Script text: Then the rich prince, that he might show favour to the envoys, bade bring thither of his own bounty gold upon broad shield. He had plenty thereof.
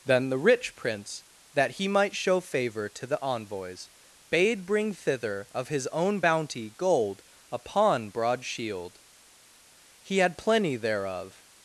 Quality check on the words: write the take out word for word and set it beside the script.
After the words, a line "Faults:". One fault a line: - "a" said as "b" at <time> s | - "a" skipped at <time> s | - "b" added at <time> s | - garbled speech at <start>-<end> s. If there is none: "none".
Then the rich prince, that he might show favour to the envoys, bade bring thither of his own bounty gold upon broad shield. He had plenty thereof.
Faults:
none